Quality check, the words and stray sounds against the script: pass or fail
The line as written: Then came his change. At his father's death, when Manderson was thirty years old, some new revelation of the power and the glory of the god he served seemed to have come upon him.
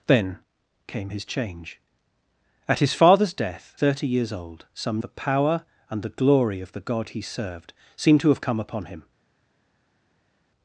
fail